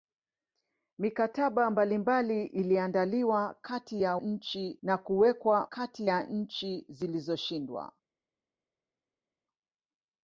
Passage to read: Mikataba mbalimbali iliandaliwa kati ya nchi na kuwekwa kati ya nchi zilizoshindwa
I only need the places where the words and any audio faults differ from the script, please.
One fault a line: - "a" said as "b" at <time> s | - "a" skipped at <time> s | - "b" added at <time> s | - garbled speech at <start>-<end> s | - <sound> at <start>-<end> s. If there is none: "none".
none